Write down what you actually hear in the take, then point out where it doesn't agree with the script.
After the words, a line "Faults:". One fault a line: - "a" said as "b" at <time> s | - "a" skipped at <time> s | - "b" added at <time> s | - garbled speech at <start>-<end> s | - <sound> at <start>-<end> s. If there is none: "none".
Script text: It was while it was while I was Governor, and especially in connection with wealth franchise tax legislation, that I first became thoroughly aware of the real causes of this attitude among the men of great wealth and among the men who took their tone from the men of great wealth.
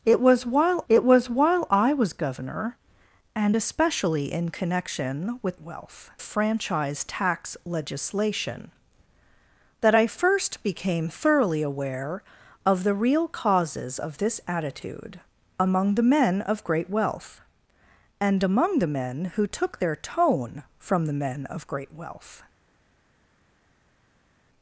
It was while it was while I was Governor, and especially in connection with wealth franchise tax legislation, that I first became thoroughly aware of the real causes of this attitude among the men of great wealth and among the men who took their tone from the men of great wealth.
Faults:
none